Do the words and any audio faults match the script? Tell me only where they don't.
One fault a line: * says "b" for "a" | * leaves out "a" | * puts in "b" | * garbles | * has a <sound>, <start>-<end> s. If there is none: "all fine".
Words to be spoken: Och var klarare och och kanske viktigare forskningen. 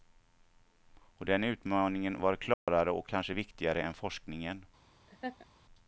* puts in "den utmaningen"
* has a dropout, 2.5-2.7 s
* leaves out "och"
* puts in "än"
* has a laugh, 5.1-5.5 s